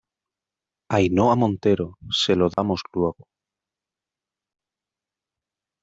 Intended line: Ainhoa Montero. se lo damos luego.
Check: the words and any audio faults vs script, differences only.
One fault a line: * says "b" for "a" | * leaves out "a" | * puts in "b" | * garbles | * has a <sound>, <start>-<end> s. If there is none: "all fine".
* has a dropout, 2.5-2.6 s